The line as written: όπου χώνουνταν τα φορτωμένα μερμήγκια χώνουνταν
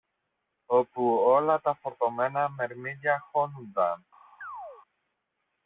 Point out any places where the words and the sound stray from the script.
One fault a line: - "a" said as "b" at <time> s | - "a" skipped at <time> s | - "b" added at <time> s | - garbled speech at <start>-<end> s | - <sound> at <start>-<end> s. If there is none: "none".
- "χώνουνταν" said as "όλα" at 1.2 s
- chirp at 4.4-4.8 s